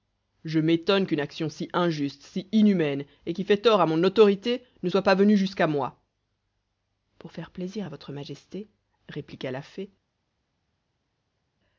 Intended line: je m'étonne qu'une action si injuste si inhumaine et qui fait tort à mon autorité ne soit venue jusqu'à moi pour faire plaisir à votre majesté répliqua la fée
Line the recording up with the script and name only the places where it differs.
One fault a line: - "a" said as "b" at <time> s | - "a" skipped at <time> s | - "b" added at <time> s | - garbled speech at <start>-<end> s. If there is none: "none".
- "pas" added at 5.0 s